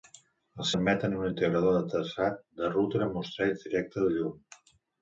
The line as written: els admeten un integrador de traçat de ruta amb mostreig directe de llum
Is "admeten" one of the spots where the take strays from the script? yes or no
no